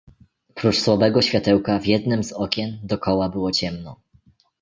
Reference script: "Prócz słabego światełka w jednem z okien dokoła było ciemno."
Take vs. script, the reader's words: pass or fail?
pass